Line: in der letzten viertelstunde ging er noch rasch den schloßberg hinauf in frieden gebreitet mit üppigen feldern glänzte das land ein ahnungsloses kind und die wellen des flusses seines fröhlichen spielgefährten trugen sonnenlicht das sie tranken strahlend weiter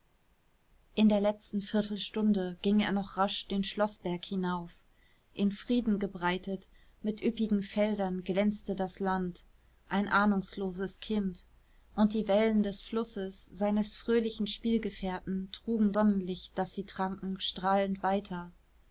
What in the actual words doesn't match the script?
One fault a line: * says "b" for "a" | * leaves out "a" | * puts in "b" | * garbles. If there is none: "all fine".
all fine